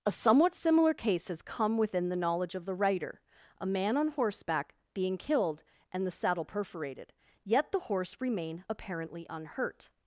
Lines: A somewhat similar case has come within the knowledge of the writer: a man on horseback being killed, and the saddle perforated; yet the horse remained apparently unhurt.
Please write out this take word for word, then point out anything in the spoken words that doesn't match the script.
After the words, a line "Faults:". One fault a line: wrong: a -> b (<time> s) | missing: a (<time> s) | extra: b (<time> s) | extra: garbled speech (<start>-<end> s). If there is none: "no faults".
A somewhat similar case has come within the knowledge of the writer: a man on horseback being killed, and the saddle perforated; yet the horse remain apparently unhurt.
Faults:
wrong: remained -> remain (8.2 s)